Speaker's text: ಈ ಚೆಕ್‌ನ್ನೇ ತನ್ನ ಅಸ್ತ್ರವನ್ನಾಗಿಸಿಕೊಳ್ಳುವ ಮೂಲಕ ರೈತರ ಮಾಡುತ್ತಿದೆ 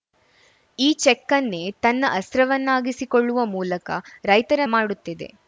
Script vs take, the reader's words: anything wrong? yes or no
no